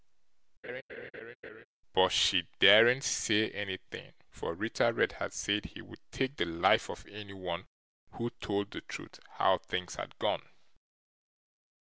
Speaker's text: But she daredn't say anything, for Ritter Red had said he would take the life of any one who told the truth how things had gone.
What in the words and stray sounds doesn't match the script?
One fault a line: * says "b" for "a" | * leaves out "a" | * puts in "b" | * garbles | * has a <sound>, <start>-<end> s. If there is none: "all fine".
* has a laugh, 0.6-1.7 s